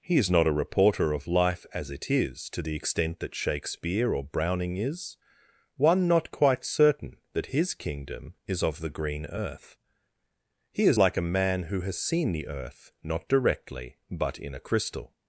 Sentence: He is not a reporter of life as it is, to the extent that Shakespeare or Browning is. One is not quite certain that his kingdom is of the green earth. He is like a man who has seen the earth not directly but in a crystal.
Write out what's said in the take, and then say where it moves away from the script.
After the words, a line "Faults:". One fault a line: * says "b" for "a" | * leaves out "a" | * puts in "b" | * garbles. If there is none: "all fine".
He is not a reporter of life as it is, to the extent that Shakespeare or Browning is. One not quite certain that his kingdom is of the green earth. He is like a man who has seen the earth not directly but in a crystal.
Faults:
* leaves out "is"